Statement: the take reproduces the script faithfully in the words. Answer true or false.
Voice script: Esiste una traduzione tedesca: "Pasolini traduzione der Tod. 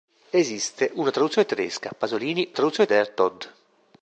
true